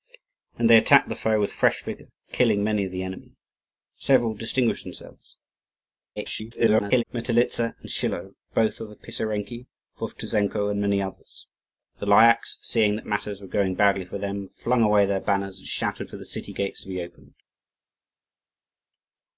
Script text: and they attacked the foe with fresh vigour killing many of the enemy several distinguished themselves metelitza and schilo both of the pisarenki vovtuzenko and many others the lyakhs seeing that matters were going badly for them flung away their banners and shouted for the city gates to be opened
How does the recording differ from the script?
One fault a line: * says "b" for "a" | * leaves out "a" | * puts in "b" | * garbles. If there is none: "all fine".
* garbles